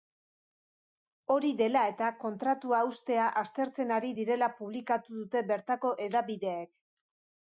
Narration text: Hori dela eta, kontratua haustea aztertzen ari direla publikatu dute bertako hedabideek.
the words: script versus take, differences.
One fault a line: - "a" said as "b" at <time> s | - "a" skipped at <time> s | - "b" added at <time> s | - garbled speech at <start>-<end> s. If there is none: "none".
none